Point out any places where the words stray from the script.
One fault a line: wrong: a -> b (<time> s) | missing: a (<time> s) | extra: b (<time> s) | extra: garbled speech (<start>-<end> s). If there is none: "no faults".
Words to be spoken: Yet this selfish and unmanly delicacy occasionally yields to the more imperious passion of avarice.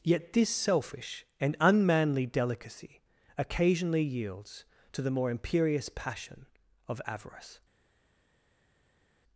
no faults